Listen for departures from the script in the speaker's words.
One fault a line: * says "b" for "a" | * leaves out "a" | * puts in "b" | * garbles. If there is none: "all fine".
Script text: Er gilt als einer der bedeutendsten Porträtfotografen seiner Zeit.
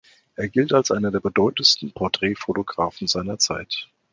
all fine